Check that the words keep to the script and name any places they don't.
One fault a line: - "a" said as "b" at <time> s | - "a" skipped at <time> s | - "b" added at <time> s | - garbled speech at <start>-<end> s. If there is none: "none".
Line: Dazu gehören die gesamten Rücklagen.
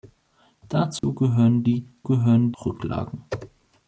- "gesamten" said as "gehören" at 2.0 s